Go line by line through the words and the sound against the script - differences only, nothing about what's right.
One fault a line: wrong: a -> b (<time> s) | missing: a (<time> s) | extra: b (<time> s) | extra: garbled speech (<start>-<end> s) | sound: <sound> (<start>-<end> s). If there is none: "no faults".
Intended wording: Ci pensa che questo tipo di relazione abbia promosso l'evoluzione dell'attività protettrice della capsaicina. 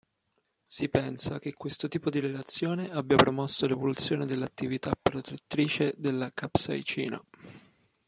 wrong: Ci -> Si (0.7 s)